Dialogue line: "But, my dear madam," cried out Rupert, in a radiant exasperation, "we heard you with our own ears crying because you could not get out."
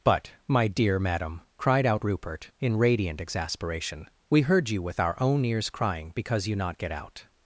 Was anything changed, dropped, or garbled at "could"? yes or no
yes